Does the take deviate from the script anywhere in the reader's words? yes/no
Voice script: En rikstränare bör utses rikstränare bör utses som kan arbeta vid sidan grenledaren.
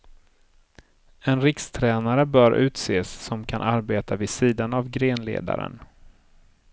yes